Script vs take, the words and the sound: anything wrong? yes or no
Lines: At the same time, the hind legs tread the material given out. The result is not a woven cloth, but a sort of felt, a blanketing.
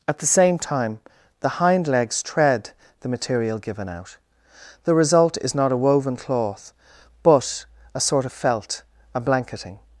no